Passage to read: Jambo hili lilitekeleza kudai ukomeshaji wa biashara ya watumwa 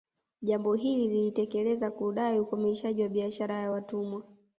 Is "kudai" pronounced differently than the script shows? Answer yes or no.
no